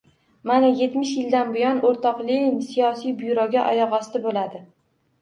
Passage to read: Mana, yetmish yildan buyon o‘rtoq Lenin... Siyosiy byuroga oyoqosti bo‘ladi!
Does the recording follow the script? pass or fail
pass